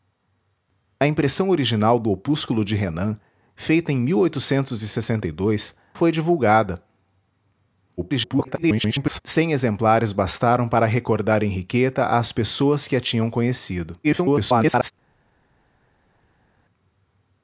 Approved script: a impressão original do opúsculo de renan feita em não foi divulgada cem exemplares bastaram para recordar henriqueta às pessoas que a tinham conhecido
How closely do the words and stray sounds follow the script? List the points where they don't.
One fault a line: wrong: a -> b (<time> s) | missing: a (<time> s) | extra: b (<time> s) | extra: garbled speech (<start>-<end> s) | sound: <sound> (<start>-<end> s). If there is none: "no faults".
missing: não (4.0 s)
extra: garbled speech (8.0-9.2 s)
extra: garbled speech (14.0-14.9 s)